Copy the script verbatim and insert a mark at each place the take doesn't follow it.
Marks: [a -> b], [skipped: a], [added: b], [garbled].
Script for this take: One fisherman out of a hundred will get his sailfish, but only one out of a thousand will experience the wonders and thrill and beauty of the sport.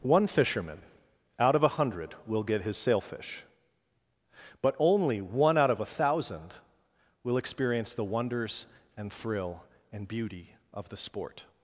One fisherman out of a hundred will get his sailfish, but only one out of a thousand will experience the wonders and thrill and beauty of the sport.